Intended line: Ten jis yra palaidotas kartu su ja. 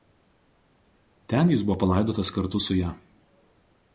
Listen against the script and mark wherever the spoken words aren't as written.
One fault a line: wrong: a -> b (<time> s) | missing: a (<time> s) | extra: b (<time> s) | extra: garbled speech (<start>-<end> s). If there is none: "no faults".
wrong: yra -> buvo (1.7 s)